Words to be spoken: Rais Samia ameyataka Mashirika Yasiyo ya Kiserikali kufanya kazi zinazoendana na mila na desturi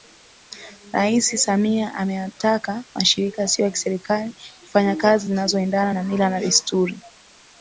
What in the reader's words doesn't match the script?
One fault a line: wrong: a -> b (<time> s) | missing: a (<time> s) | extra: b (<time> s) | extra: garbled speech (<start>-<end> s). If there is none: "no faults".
no faults